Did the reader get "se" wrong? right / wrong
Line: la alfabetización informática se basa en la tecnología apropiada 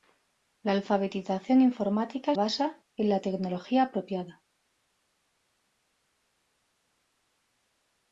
wrong